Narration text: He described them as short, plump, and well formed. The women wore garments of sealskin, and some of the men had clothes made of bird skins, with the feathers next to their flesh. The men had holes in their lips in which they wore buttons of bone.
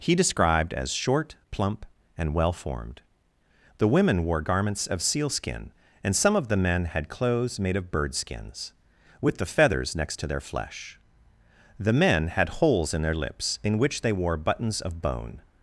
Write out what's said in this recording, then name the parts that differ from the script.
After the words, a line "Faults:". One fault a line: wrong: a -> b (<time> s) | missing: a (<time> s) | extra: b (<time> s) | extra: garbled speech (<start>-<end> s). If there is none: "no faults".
He described as short, plump, and well formed. The women wore garments of sealskin, and some of the men had clothes made of bird skins, with the feathers next to their flesh. The men had holes in their lips in which they wore buttons of bone.
Faults:
missing: them (0.7 s)